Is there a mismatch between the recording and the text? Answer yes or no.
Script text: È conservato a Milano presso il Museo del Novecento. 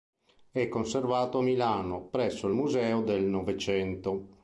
no